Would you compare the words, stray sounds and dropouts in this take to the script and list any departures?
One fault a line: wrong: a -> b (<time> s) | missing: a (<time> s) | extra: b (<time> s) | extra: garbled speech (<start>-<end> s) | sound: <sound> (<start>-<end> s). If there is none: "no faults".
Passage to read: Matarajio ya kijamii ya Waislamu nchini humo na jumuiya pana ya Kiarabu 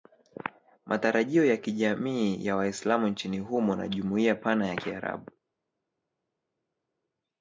no faults